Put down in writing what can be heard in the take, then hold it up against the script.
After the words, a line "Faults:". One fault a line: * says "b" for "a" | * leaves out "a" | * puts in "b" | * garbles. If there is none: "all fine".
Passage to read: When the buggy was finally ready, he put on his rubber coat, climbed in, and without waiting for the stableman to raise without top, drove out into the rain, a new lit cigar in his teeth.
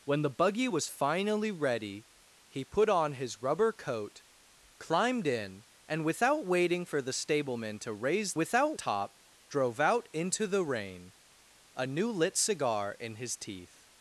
When the buggy was finally ready, he put on his rubber coat, climbed in, and without waiting for the stableman to raise without top, drove out into the rain, a new lit cigar in his teeth.
Faults:
all fine